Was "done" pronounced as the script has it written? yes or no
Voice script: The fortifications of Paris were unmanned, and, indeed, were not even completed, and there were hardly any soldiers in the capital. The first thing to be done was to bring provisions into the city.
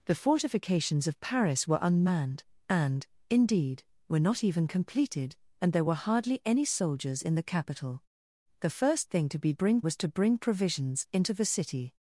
no